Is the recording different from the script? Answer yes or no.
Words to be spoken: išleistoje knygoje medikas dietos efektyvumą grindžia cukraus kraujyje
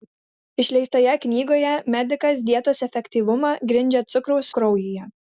no